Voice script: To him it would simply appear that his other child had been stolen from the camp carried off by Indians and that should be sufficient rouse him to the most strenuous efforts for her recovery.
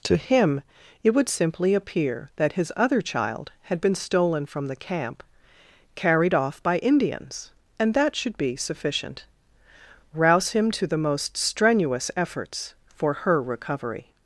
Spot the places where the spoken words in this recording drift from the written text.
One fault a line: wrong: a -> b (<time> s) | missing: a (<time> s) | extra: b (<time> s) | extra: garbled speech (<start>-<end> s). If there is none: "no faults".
no faults